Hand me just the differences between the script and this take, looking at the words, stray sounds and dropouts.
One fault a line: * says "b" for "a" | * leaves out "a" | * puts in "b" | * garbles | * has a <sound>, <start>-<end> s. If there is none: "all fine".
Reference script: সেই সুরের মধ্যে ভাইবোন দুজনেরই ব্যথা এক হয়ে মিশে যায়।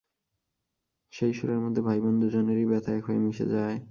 all fine